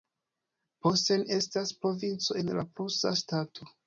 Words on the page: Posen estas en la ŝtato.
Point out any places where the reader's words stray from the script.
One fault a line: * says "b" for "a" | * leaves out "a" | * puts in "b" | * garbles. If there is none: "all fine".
* puts in "provinco"
* puts in "prusa"